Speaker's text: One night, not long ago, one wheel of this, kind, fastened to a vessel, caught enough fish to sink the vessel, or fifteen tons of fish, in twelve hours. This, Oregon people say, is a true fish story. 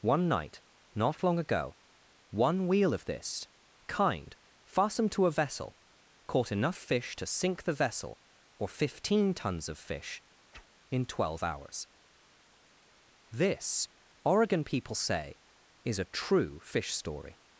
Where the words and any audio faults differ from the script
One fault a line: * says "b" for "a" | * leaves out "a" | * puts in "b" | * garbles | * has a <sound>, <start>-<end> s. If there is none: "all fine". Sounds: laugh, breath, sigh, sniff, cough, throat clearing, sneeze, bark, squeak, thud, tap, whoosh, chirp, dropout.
* has a whoosh, 10.5-10.7 s